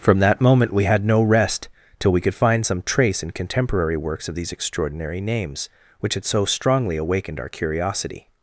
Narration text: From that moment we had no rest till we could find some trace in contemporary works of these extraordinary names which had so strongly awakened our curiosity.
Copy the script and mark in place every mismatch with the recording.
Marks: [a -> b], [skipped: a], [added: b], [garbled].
From that moment we had no rest till we could find some trace in contemporary works of these extraordinary names which had so strongly awakened our curiosity.